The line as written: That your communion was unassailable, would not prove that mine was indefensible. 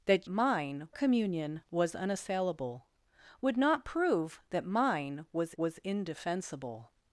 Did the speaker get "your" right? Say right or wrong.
wrong